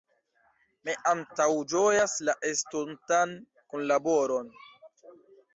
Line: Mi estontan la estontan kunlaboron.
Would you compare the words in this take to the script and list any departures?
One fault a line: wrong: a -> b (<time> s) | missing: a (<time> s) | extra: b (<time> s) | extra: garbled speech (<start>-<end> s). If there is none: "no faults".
wrong: estontan -> antaŭĝojas (1.1 s)